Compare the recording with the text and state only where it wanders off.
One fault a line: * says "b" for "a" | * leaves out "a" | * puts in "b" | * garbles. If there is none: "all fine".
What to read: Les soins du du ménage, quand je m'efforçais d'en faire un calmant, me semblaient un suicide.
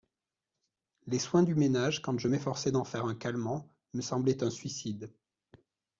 * leaves out "du"